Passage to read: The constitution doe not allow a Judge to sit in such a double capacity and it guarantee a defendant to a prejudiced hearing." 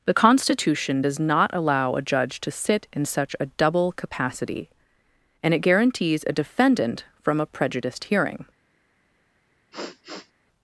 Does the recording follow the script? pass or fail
fail